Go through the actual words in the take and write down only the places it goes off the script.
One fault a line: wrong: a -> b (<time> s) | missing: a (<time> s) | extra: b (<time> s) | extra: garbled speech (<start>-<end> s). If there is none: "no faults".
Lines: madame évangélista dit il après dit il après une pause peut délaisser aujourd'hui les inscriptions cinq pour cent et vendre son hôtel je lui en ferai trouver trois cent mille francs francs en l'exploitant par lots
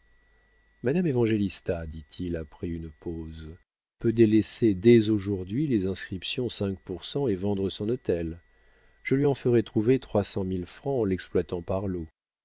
missing: dit il après (2.7 s)
extra: dès (4.7 s)
missing: francs (11.0 s)